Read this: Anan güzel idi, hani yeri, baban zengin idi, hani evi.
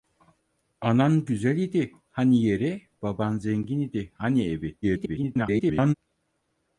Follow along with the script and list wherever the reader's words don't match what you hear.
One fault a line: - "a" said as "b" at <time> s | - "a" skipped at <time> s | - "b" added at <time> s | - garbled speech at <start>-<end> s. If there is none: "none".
- garbled speech at 4.8-5.9 s